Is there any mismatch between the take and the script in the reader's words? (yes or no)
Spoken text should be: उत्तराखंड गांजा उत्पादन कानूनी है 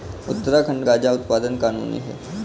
no